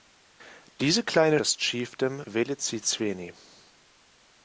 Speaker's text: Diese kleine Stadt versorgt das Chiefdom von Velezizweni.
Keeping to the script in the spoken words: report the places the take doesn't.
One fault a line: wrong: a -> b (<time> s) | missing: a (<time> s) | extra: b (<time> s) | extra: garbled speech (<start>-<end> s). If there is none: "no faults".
missing: Stadt versorgt (1.4 s)
missing: von (2.2 s)